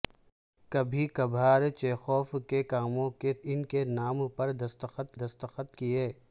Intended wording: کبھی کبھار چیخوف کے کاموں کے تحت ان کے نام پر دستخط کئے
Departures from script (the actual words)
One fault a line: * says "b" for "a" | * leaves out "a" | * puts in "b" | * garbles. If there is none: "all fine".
* leaves out "تحت"
* puts in "دستخط"